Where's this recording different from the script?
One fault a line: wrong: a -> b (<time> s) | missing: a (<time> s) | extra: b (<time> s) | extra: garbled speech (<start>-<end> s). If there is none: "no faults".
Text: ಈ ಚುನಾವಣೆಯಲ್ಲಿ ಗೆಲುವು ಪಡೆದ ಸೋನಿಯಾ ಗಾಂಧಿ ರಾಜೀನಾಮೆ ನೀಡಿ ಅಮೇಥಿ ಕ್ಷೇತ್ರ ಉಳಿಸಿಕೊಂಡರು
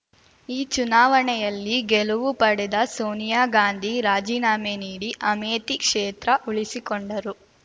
no faults